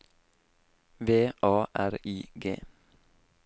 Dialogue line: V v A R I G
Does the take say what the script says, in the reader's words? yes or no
no